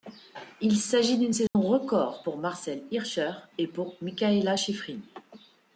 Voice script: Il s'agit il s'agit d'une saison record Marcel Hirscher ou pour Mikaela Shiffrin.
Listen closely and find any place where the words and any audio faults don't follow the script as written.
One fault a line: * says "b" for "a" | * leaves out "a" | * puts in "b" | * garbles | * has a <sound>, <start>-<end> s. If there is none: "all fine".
* leaves out "il s'agit"
* has a dropout, 1.5-1.6 s
* puts in "pour"
* says "et" for "ou"